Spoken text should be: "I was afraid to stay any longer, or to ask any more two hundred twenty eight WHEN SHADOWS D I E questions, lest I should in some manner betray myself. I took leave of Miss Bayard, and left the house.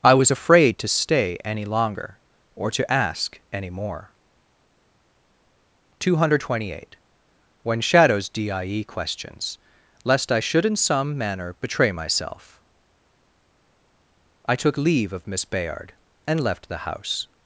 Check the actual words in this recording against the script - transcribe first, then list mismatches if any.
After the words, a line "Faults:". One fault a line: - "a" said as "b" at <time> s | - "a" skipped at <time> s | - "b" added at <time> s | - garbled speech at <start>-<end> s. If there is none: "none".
"I was afraid to stay any longer, or to ask any more two hundred twenty eight WHEN SHADOWS D I E questions, lest I should in some manner betray myself. I took leave of Miss Bayard, and left the house.
Faults:
none